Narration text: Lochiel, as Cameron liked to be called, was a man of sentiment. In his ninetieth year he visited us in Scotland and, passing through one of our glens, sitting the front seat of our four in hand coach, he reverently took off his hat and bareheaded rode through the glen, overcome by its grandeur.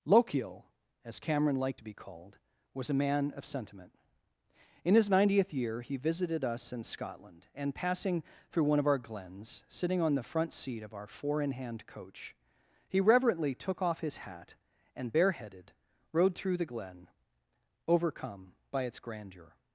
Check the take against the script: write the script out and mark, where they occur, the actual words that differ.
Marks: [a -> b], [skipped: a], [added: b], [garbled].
Lochiel, as Cameron liked to be called, was a man of sentiment. In his ninetieth year he visited us in Scotland and, passing through one of our glens, sitting [added: on] the front seat of our four in hand coach, he reverently took off his hat and bareheaded rode through the glen, overcome by its grandeur.